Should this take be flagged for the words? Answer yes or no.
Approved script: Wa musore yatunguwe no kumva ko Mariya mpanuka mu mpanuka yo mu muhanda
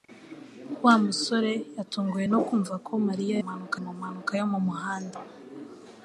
no